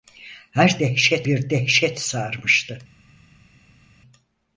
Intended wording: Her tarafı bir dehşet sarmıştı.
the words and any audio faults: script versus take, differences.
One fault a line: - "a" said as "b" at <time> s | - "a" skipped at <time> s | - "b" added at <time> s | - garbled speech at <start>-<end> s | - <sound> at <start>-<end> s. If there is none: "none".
- "tarafı" said as "dehşet" at 0.8 s